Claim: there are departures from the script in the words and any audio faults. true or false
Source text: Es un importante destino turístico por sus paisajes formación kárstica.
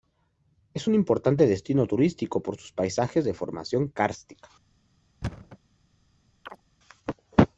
true